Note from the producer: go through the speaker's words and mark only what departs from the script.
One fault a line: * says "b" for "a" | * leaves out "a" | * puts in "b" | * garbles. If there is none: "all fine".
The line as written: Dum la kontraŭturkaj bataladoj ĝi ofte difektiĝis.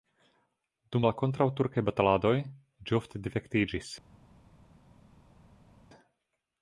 all fine